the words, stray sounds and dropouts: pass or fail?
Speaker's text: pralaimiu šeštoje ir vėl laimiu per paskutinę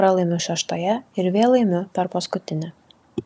pass